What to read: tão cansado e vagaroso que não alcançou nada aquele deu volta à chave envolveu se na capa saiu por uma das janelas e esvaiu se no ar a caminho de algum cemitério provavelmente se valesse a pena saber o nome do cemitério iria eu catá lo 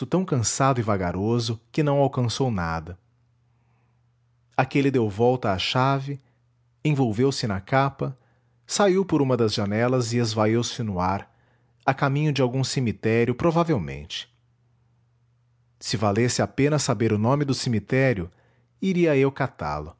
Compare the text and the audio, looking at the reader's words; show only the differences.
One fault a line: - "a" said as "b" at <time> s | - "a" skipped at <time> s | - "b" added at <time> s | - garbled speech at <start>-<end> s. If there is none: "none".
none